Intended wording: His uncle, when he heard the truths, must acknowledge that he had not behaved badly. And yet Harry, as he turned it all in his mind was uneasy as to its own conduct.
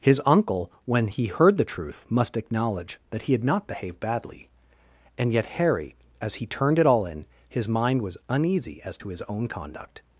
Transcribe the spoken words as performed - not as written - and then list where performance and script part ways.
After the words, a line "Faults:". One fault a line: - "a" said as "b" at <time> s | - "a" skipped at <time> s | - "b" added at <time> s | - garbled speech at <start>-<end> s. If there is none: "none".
His uncle, when he heard the truth, must acknowledge that he had not behaved badly. And yet Harry, as he turned it all in his mind was uneasy as to his own conduct.
Faults:
- "truths" said as "truth" at 1.7 s
- "its" said as "his" at 9.1 s